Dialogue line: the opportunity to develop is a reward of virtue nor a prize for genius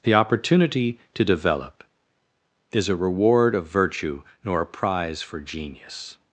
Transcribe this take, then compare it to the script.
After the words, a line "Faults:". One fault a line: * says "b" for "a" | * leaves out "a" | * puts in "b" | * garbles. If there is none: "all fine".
the opportunity to develop is a reward of virtue nor a prize for genius
Faults:
all fine